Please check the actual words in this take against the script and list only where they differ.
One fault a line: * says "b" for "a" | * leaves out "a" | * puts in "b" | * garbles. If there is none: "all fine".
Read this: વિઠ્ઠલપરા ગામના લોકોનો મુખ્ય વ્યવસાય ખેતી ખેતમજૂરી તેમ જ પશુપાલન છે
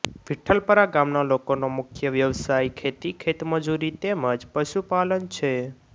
all fine